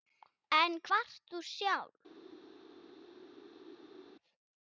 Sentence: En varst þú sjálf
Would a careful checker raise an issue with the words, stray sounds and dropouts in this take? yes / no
no